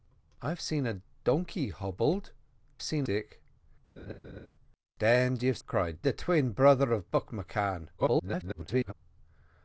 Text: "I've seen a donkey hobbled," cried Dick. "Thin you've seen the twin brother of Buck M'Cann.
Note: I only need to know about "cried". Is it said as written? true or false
false